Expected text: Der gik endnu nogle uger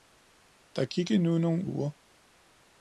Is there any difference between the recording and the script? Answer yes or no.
no